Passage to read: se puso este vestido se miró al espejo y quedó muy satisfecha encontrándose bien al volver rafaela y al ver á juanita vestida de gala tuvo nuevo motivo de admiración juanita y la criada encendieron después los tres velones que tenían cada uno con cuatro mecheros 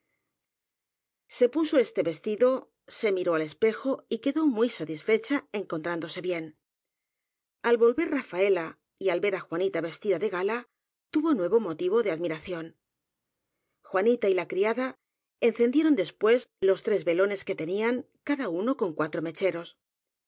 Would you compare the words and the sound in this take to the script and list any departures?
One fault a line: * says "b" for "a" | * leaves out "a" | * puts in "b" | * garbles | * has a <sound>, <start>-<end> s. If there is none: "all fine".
all fine